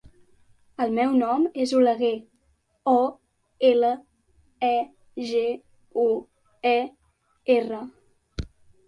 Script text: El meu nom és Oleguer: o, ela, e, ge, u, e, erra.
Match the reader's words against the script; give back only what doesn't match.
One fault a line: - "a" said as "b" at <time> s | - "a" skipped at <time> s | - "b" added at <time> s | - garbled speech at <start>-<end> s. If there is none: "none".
none